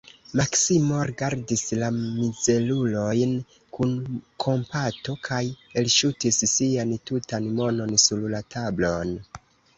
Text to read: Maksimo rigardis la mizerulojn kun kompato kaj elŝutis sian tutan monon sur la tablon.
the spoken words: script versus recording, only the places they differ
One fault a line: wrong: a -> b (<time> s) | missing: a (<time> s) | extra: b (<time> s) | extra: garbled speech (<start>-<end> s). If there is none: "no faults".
no faults